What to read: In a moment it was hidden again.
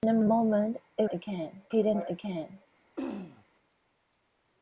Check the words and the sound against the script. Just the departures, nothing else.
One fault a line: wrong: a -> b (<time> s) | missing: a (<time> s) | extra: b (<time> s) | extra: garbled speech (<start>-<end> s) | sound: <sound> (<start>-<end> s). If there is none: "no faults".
extra: a (0.2 s)
wrong: was -> again (1.1 s)
sound: throat clearing (3.0-3.4 s)